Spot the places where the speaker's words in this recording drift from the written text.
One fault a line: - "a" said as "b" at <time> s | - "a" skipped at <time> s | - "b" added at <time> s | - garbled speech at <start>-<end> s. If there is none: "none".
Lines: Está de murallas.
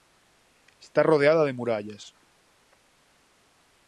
- "rodeada" added at 1.0 s